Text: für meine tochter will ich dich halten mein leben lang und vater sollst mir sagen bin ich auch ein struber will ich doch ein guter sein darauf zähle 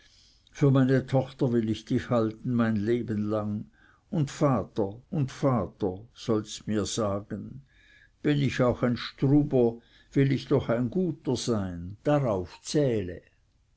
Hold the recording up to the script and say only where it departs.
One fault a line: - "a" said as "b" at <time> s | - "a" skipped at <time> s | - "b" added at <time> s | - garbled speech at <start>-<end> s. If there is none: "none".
- "und vater" added at 5.1 s